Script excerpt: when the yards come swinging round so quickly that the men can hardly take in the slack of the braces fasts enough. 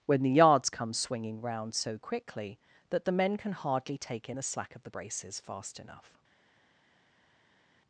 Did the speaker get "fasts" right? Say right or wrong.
wrong